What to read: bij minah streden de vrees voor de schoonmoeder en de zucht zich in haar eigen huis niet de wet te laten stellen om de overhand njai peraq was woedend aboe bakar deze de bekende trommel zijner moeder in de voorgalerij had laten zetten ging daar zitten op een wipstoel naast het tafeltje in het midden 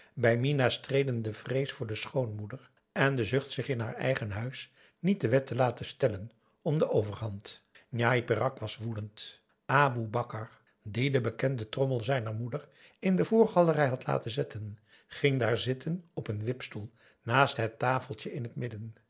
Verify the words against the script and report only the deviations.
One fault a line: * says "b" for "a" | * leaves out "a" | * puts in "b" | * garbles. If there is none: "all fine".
* says "die" for "deze"